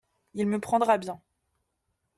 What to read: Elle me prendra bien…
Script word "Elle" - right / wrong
wrong